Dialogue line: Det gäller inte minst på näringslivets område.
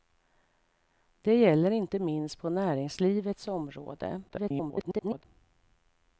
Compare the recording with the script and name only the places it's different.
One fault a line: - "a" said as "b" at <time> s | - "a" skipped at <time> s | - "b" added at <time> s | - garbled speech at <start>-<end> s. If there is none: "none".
- garbled speech at 4.3-5.2 s